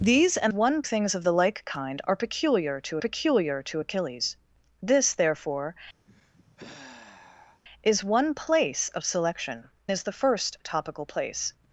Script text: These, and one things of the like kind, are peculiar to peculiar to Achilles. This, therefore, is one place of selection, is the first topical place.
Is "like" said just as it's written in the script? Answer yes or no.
yes